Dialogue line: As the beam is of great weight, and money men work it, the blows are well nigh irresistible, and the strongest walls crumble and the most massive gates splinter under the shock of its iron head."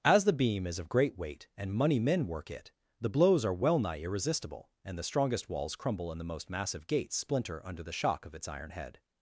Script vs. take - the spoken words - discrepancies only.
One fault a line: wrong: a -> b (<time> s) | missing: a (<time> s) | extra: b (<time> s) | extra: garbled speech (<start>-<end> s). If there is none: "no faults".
no faults